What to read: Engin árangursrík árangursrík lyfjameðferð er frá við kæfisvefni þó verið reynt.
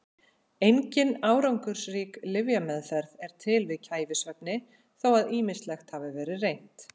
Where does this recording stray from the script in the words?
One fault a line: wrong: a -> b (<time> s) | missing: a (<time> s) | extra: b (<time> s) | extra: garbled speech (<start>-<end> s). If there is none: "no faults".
missing: árangursrík (2.2 s)
wrong: frá -> til (3.5 s)
extra: að ýmislegt hafi (5.2 s)